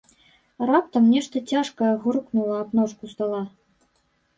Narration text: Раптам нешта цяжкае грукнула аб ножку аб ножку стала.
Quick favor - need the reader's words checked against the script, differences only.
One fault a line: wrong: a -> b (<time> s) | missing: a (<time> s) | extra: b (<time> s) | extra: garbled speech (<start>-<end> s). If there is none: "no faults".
missing: аб ножку (3.0 s)